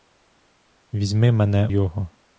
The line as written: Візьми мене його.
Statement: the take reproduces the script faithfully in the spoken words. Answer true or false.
true